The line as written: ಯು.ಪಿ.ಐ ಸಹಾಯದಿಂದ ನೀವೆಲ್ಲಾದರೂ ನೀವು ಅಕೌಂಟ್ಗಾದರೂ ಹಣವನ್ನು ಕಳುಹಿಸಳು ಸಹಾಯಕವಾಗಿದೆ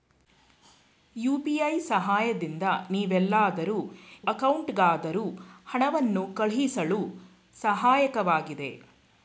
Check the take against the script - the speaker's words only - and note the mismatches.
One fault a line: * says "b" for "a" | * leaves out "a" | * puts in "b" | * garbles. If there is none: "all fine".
* leaves out "ನೀವು"